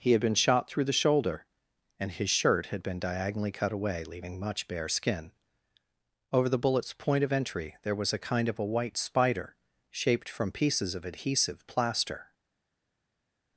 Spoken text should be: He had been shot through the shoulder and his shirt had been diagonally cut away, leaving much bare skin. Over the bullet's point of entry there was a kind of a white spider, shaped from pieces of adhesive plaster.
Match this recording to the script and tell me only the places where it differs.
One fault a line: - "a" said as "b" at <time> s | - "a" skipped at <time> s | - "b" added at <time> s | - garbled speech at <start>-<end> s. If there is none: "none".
none